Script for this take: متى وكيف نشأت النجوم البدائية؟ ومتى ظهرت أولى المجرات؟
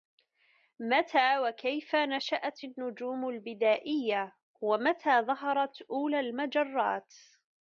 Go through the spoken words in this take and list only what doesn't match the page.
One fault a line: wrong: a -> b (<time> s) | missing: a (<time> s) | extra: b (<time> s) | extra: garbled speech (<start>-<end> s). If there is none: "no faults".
no faults